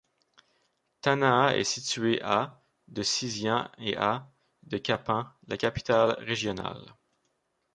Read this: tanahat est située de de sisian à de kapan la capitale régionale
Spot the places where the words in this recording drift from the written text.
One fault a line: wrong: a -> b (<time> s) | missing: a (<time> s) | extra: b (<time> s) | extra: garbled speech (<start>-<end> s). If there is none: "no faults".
wrong: de -> à (2.2 s)
extra: et (3.8 s)